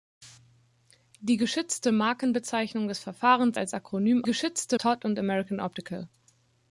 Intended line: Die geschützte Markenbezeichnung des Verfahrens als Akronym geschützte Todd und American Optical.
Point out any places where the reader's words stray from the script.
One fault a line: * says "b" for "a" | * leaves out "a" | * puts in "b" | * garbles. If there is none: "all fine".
all fine